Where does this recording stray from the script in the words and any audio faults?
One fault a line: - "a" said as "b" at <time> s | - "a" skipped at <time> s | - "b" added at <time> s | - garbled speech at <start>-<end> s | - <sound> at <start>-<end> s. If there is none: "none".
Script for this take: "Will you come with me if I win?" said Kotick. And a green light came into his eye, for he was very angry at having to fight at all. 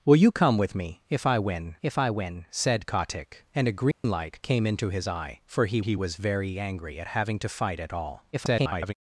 - "if I win" added at 1.8 s
- dropout at 3.9-4.0 s
- "he" added at 5.8 s
- garbled speech at 8.3-8.9 s